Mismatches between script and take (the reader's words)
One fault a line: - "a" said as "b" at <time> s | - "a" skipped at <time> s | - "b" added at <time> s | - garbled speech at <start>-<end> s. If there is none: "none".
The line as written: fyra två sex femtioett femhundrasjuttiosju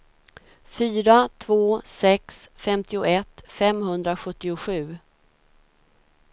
none